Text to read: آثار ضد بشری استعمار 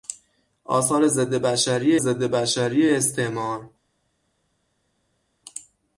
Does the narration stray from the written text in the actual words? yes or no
yes